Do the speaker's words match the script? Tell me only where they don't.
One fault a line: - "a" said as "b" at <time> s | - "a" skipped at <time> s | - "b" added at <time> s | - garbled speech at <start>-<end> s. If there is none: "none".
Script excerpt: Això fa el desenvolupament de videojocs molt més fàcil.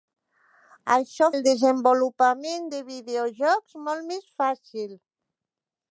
- "fa" skipped at 1.3 s